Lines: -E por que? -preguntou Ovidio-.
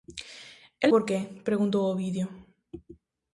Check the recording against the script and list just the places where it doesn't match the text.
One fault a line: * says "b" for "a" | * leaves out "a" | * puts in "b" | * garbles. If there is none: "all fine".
all fine